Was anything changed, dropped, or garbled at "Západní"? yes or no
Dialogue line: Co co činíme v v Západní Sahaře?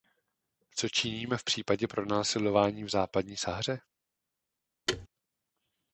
no